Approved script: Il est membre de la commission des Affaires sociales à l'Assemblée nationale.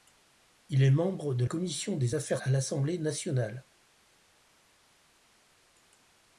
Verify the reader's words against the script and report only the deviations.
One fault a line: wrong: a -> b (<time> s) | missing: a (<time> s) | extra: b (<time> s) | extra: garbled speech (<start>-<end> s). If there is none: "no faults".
missing: la (1.4 s)
missing: sociales (2.4 s)